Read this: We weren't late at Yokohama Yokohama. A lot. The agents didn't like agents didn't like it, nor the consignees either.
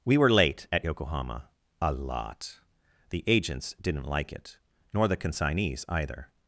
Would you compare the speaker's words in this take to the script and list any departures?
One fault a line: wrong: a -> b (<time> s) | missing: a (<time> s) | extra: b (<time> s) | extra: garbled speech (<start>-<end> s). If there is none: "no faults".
wrong: weren't -> were (0.2 s)
missing: Yokohama (1.5 s)
missing: agents didn't like (4.3 s)